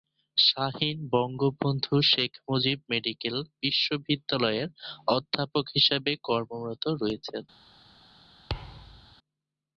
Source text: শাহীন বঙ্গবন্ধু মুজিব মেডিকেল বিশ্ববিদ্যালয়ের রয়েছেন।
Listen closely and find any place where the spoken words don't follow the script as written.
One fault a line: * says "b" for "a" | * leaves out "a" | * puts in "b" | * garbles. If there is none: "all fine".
* puts in "শেখ"
* puts in "অধ্যাপক হিসেবে কর্মরত"